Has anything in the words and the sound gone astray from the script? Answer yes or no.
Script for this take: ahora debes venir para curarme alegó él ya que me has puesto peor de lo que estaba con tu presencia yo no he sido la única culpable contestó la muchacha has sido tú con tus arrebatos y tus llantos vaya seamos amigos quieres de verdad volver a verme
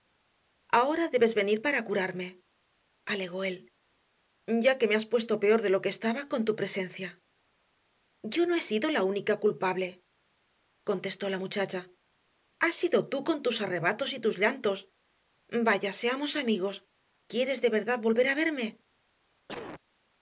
yes